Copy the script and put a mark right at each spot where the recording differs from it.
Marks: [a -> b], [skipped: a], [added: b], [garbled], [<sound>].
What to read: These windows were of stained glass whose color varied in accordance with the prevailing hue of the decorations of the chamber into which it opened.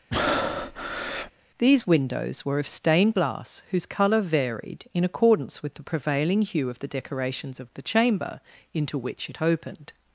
[breath] These windows were of stained glass whose color varied in accordance with the prevailing hue of the decorations of the chamber into which it opened.